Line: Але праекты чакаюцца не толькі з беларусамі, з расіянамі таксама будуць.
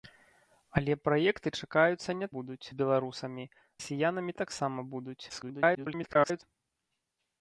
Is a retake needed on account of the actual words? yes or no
yes